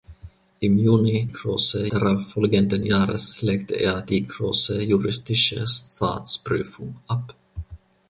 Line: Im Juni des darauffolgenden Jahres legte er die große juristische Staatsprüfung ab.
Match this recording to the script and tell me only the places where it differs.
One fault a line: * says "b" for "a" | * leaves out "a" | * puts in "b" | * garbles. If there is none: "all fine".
* says "große" for "des"